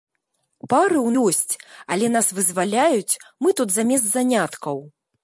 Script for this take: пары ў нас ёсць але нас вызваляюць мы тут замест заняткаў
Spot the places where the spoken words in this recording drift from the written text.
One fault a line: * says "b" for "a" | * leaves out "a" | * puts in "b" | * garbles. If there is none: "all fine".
* leaves out "нас"